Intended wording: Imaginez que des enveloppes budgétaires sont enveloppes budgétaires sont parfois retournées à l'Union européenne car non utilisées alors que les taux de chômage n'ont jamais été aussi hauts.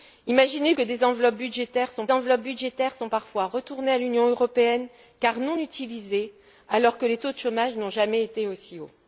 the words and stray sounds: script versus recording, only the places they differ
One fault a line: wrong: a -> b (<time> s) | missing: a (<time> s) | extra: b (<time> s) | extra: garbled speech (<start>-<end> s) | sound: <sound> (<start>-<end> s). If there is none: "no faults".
no faults